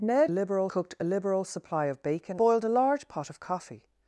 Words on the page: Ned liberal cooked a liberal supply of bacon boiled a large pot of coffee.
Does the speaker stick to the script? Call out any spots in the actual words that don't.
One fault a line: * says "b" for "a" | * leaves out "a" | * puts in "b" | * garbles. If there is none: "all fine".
all fine